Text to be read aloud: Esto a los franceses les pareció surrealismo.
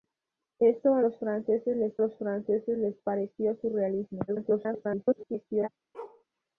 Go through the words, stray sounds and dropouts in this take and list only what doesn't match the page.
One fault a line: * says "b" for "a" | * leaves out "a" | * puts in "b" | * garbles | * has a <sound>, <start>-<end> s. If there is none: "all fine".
* puts in "los franceses les"
* garbles
* has a bark, 5.9-6.2 s